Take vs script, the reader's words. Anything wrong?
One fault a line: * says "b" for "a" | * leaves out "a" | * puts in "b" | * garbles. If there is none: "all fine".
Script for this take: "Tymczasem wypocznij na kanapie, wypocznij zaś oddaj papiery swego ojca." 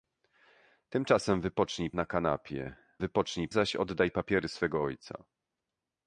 all fine